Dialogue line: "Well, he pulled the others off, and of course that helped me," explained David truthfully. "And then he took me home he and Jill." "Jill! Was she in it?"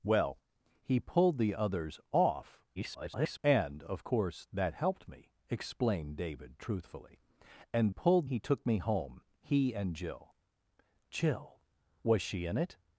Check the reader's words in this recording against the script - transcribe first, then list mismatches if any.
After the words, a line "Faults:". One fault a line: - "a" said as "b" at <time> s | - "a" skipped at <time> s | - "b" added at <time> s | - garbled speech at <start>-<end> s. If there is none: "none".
"Well, he pulled the others off, [garbled] and of course that helped me," explained David truthfully. "And pulled he took me home he and Jill." "Jill! Was she in it?"
Faults:
- garbled speech at 2.8-3.4 s
- "then" said as "pulled" at 7.9 s